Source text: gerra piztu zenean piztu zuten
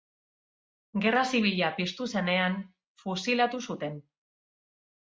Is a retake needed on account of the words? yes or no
yes